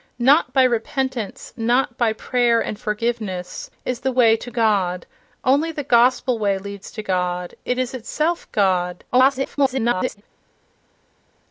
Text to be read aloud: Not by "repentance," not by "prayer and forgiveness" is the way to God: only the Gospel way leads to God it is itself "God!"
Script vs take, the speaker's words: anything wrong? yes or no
yes